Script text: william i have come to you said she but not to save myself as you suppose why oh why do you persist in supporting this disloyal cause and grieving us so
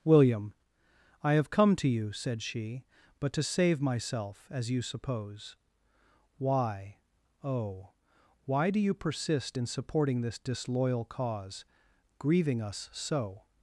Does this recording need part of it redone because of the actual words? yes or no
yes